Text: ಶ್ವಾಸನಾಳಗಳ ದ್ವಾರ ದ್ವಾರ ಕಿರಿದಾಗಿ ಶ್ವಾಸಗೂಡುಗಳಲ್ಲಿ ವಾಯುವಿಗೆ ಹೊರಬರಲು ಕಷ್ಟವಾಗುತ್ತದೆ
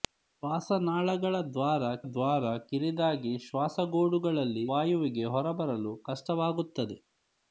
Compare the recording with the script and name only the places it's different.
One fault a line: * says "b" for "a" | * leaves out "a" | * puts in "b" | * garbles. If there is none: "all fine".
all fine